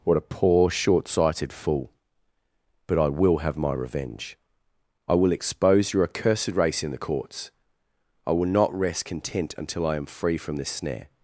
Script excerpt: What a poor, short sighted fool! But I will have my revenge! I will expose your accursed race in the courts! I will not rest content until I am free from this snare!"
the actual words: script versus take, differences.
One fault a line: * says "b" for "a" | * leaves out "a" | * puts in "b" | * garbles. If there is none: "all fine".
all fine